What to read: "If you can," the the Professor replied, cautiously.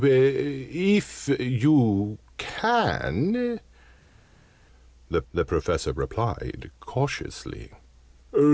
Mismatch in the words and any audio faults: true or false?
false